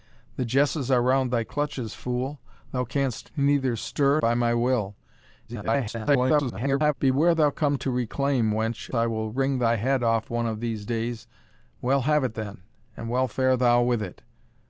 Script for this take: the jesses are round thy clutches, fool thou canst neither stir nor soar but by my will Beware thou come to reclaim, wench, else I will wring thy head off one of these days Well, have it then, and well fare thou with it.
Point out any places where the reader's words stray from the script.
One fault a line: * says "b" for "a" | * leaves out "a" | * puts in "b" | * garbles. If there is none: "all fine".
* leaves out "nor soar but"
* garbles
* leaves out "else"